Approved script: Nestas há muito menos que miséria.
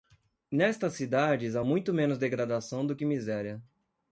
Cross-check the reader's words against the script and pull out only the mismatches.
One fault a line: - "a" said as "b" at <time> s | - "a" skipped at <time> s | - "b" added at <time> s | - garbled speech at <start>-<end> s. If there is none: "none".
- "cidades" added at 0.9 s
- "degradação do" added at 2.2 s